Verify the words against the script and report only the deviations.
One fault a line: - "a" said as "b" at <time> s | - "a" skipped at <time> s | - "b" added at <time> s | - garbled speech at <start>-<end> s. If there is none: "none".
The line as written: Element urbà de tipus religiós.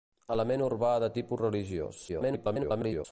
- garbled speech at 2.1-3.1 s